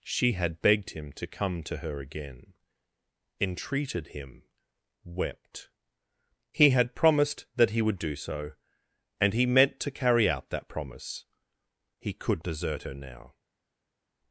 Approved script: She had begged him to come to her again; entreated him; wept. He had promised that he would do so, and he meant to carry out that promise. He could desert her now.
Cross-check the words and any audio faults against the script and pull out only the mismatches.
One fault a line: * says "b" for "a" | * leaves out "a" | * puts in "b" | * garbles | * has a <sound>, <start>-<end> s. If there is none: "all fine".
all fine